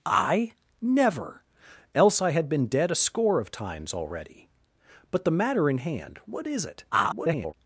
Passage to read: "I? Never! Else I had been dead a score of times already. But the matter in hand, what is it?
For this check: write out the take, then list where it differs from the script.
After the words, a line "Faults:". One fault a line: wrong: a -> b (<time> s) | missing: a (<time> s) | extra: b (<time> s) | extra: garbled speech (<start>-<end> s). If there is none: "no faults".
"I? Never! Else I had been dead a score of times already. But the matter in hand, what is it? [garbled]
Faults:
extra: garbled speech (6.9-7.5 s)